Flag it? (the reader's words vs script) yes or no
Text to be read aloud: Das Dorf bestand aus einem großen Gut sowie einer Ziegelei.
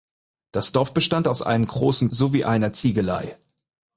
yes